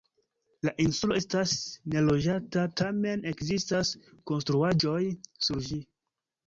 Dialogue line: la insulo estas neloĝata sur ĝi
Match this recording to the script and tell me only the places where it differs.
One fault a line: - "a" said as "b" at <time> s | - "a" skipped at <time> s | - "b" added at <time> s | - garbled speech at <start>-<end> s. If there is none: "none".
- "tamen ekzistas konstruaĵoj" added at 2.8 s